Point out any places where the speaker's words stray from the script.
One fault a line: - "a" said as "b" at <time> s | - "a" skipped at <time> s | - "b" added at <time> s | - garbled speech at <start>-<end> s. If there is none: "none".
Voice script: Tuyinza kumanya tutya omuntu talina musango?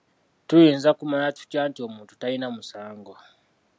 - "nti" added at 1.7 s